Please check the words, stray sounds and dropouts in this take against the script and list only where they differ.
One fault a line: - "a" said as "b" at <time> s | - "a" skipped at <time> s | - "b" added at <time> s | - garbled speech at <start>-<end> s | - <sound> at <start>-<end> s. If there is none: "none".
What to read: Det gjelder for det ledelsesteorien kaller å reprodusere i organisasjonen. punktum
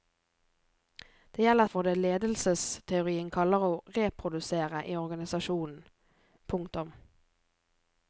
none